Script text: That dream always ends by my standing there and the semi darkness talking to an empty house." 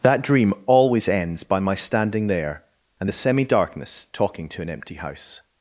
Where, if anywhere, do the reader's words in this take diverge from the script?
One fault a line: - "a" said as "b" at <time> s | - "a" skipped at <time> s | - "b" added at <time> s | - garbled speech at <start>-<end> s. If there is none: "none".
none